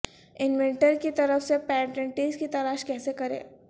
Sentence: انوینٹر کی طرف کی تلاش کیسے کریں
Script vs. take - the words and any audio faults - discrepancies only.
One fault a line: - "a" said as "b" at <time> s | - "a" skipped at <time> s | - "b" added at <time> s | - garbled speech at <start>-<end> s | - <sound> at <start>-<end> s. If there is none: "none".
- "سے پیٹنٹس" added at 1.4 s